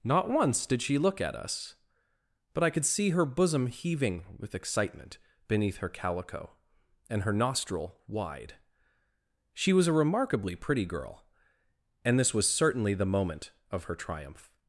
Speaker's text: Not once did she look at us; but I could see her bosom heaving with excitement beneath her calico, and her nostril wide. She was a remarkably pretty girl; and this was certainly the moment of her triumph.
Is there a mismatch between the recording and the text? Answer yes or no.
no